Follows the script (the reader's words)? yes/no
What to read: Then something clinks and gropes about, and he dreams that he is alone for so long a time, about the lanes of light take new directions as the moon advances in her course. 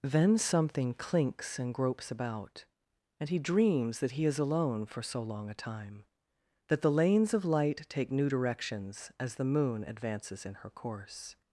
no